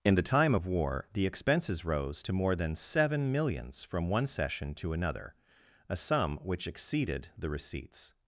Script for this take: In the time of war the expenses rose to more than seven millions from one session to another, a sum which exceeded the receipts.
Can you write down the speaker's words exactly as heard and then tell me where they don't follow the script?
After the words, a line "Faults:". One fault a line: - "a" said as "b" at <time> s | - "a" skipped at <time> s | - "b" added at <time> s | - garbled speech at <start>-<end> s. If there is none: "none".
In the time of war the expenses rose to more than seven millions from one session to another, a sum which exceeded the receipts.
Faults:
none